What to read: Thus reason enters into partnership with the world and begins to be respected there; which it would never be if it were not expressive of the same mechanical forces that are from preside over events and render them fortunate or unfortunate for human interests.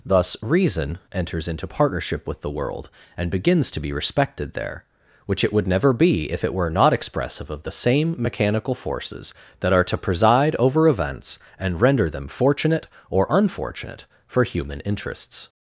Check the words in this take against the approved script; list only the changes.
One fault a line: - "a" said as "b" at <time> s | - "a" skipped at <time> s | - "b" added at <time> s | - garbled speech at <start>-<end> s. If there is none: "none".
- "from" said as "to" at 9.8 s